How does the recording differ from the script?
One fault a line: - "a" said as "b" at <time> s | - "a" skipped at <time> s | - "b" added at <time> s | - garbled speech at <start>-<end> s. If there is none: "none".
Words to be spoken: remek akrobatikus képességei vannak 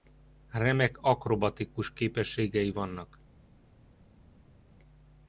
none